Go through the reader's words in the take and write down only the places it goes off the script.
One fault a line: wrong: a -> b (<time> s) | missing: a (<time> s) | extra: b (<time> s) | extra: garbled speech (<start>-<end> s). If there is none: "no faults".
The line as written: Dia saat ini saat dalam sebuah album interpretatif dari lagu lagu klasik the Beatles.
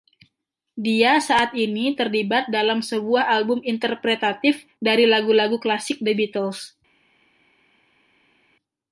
wrong: saat -> terlibat (1.9 s)